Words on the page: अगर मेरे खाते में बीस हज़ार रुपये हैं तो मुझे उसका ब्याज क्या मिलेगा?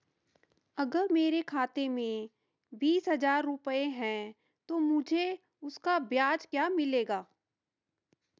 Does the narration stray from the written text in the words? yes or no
no